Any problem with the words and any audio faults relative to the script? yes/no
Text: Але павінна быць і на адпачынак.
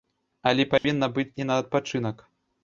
yes